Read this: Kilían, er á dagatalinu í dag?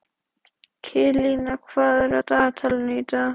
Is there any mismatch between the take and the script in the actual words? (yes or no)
yes